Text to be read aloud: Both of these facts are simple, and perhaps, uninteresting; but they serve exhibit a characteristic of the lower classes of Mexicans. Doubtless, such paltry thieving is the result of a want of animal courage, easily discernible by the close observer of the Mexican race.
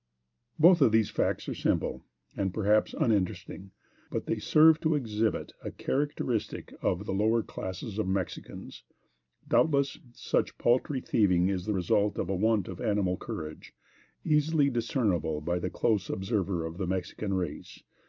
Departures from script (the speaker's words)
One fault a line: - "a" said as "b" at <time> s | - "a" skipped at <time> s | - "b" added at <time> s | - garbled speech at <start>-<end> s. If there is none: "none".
- "to" added at 4.8 s